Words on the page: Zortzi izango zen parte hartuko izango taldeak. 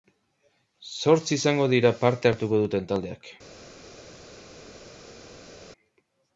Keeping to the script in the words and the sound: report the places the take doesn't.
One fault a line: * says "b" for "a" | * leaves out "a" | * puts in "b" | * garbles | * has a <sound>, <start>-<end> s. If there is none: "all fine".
* says "dira" for "zen"
* says "duten" for "izango"